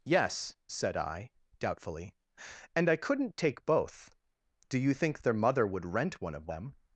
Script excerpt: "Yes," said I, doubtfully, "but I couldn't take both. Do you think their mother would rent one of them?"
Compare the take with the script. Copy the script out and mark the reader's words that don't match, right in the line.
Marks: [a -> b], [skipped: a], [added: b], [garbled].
"Yes," said I, doubtfully, ["but -> and] I couldn't take both. Do you think their mother would rent one of them?"